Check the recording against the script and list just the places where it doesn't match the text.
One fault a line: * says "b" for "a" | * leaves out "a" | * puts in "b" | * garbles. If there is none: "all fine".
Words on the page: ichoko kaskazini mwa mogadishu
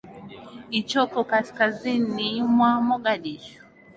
all fine